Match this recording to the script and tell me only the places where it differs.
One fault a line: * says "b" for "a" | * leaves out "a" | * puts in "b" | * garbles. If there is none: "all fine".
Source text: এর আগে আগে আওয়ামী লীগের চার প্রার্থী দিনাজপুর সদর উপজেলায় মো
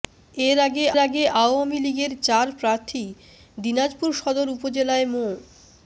all fine